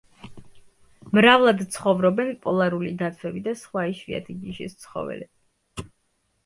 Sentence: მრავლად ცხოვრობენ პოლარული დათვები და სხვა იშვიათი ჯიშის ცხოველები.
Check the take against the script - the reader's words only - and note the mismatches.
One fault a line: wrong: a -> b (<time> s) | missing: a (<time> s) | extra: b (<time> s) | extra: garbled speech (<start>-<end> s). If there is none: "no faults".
no faults